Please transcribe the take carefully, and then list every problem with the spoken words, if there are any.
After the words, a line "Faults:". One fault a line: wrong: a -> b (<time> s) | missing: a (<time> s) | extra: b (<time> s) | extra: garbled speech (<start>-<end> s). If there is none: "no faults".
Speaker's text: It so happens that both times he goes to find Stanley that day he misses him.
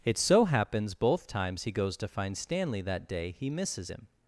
It so happens both times he goes to find Stanley that day he misses him.
Faults:
missing: that (0.9 s)